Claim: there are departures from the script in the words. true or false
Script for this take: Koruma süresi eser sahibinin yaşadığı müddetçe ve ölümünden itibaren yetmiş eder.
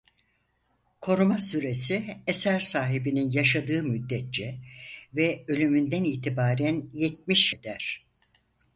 false